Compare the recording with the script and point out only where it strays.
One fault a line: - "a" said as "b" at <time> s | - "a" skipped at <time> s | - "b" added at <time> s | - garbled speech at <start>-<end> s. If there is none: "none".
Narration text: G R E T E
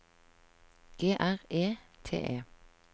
none